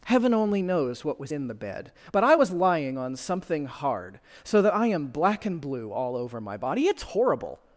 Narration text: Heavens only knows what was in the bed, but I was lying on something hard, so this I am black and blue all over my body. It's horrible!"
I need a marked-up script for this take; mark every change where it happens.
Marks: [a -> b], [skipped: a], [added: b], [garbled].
[Heavens -> Heaven] only knows what was in the bed, but I was lying on something hard, so [this -> that] I am black and blue all over my body. It's horrible!"